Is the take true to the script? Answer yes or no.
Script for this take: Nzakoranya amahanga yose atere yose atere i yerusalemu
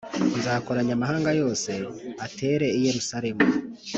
no